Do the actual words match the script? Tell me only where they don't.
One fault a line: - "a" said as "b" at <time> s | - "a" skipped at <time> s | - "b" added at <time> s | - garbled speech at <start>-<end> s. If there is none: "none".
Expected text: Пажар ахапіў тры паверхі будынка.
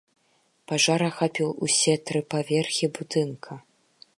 - "усе" added at 1.7 s